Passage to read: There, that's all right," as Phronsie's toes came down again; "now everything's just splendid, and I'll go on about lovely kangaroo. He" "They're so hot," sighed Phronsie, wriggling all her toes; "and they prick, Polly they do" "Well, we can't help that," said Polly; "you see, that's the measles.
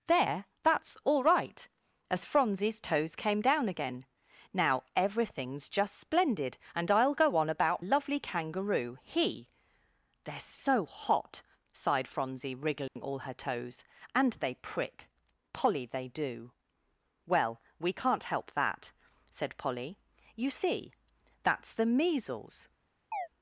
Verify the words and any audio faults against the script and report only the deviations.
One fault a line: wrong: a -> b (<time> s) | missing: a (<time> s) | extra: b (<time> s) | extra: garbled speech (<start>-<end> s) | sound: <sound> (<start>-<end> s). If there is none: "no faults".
sound: dropout (12.9-13.0 s)
sound: chirp (23.1-23.3 s)